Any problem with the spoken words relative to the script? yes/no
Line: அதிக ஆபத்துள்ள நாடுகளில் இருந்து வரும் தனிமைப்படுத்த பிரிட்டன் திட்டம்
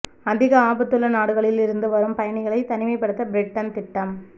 yes